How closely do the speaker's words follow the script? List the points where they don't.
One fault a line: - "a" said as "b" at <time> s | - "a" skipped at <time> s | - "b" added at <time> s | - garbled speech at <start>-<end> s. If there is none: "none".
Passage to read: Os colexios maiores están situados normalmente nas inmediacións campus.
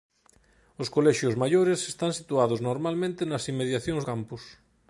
none